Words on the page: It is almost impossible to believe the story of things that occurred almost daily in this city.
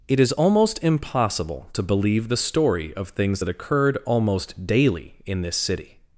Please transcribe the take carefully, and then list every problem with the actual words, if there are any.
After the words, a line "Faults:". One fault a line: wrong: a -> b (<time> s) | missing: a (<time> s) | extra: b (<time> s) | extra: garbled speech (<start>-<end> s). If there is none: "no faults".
It is almost impossible to believe the story of things that occurred almost daily in this city.
Faults:
no faults